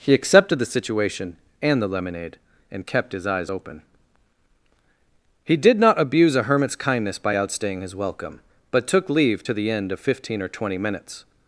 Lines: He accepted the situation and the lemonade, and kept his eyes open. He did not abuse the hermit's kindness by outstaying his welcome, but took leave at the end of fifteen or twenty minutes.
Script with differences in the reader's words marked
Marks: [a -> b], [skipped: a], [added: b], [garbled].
He accepted the situation and the lemonade, and kept his eyes open. He did not abuse [the -> a] hermit's kindness by outstaying his welcome, but took leave [at -> to] the end of fifteen or twenty minutes.